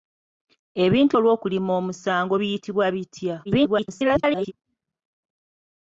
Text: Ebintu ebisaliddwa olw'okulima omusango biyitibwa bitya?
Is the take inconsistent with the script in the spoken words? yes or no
yes